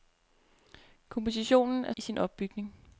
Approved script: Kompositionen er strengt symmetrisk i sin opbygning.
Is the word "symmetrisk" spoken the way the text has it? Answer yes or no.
no